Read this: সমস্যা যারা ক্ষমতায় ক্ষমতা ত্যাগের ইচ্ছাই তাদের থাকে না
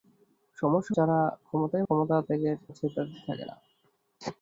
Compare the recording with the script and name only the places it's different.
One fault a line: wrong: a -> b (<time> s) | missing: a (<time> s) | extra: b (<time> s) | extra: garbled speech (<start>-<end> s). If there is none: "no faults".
no faults